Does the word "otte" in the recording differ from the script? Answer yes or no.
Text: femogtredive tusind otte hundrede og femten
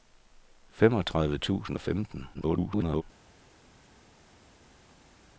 yes